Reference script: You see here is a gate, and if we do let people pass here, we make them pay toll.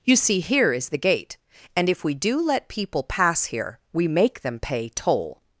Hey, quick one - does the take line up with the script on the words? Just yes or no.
no